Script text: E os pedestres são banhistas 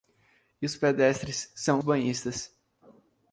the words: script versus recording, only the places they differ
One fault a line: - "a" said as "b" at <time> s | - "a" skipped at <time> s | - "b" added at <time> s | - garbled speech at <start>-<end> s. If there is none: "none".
none